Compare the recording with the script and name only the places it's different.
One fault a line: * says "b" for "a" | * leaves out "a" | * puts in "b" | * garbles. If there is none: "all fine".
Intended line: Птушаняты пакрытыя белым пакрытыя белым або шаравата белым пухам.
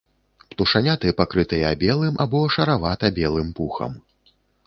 * leaves out "пакрытыя белым"